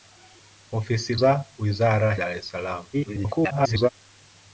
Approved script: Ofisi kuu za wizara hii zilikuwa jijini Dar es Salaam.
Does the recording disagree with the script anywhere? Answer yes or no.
yes